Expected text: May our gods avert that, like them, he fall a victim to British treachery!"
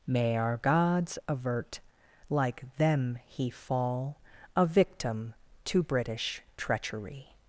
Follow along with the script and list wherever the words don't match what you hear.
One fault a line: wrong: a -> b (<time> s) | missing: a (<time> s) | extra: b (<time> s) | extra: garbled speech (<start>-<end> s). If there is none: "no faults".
missing: that (1.8 s)